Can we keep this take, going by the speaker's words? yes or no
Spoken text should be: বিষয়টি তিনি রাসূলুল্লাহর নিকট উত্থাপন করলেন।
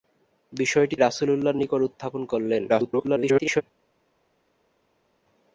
no